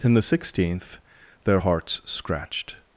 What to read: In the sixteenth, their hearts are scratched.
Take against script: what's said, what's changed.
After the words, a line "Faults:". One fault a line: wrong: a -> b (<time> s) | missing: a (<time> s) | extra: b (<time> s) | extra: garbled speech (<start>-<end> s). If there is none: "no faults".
In the sixteenth, their hearts scratched.
Faults:
missing: are (2.0 s)